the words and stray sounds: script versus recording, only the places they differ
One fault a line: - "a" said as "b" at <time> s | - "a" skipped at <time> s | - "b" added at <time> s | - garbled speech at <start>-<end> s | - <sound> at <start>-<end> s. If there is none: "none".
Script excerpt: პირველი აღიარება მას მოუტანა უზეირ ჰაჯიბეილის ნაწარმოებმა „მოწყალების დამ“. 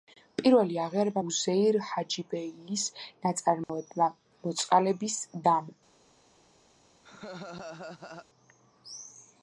- "მას მოუტანა" skipped at 1.2 s
- dropout at 3.6-3.7 s
- laugh at 7.0-8.3 s